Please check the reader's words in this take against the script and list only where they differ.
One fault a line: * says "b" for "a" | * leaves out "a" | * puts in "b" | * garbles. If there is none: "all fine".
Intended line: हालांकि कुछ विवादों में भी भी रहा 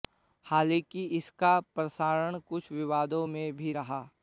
* puts in "इसका प्रसारण"
* leaves out "भी"